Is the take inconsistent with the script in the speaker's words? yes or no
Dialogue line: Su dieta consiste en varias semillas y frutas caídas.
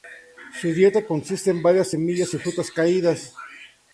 no